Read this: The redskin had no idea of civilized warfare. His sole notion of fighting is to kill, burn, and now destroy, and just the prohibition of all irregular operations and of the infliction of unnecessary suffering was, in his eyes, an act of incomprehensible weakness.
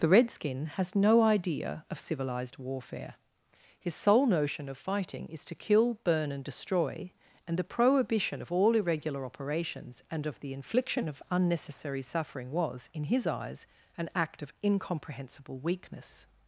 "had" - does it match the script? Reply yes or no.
no